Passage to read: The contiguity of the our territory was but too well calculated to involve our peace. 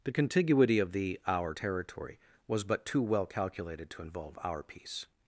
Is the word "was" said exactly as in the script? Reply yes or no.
yes